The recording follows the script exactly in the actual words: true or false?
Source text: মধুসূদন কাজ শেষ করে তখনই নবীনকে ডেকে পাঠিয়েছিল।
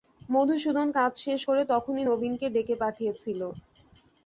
true